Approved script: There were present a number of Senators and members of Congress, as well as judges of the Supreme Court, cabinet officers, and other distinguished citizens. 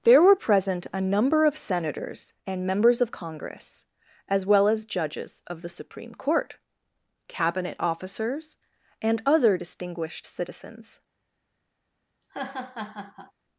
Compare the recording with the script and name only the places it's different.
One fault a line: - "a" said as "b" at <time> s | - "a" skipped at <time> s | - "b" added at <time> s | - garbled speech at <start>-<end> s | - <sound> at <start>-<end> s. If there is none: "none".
- laugh at 12.2-13.3 s